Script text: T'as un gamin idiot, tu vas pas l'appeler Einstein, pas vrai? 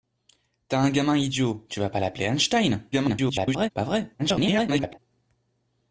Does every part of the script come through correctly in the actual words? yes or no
no